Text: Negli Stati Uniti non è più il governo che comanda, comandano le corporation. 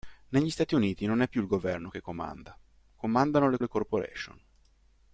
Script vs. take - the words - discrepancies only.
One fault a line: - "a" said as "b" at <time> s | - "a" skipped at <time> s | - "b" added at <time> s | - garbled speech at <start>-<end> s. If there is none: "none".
- "le" added at 3.6 s